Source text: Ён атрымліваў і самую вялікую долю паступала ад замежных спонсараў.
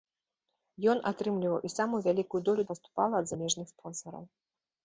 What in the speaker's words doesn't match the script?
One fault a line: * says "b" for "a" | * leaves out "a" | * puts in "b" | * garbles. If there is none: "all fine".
all fine